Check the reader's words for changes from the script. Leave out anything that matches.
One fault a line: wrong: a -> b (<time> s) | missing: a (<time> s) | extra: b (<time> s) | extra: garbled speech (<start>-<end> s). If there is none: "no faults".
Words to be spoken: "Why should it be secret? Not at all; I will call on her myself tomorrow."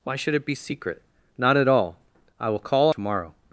missing: on her myself (2.9 s)